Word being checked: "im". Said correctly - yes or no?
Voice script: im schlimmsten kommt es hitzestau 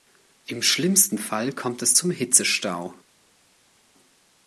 yes